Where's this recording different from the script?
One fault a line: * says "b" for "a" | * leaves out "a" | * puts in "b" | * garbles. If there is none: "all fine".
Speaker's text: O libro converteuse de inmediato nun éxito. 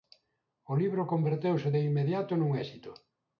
all fine